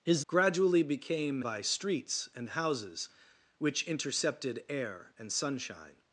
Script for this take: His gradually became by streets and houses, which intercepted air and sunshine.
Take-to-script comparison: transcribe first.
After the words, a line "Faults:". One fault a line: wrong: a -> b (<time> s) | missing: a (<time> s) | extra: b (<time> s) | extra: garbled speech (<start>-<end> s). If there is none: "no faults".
His gradually became by streets and houses, which intercepted air and sunshine.
Faults:
no faults